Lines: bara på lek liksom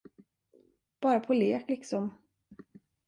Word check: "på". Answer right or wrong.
right